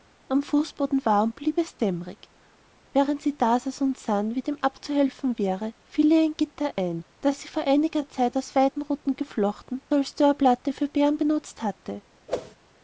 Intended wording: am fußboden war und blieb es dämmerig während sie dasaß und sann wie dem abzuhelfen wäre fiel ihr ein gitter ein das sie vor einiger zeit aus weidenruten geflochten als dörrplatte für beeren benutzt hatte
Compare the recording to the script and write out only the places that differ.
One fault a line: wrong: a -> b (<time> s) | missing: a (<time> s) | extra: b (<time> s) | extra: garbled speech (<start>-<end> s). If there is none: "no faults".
no faults